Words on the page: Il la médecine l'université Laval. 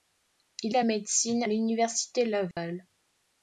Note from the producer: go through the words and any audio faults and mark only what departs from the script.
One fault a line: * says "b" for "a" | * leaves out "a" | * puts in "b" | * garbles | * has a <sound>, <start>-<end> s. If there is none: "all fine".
* has a dropout, 2.5-2.6 s